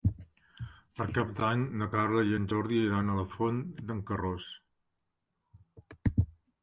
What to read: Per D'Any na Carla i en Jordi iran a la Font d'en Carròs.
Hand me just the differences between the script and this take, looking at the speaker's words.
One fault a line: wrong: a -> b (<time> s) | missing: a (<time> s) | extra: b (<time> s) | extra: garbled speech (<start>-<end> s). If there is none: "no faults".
extra: Cap (1.2 s)